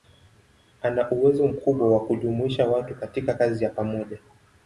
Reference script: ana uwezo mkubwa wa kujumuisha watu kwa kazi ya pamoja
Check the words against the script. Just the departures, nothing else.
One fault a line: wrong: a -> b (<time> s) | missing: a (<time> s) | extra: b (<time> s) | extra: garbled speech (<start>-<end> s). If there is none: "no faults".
wrong: kwa -> katika (2.9 s)